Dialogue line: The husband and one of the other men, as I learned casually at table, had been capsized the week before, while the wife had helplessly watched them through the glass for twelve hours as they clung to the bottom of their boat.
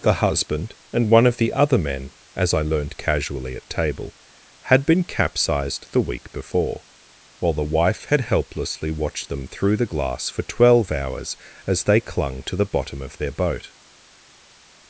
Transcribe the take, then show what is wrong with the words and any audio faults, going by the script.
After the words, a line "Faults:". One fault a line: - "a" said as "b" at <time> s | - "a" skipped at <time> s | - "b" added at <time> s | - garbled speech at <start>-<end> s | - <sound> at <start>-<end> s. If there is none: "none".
The husband and one of the other men, as I learned casually at table, had been capsized the week before, while the wife had helplessly watched them through the glass for twelve hours as they clung to the bottom of their boat.
Faults:
none